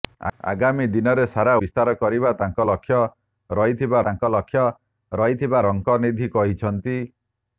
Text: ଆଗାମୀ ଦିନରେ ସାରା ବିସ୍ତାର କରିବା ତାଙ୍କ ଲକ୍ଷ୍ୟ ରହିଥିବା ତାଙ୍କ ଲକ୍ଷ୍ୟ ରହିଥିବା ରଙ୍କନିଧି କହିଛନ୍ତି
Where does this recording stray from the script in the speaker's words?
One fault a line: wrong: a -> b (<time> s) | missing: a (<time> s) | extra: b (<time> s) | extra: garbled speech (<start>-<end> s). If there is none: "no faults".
no faults